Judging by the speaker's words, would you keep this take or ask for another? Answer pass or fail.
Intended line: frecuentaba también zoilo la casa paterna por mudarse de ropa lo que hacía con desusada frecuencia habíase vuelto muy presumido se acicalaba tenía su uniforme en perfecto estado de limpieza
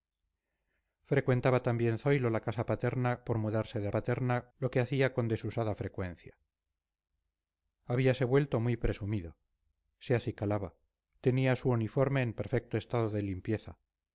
fail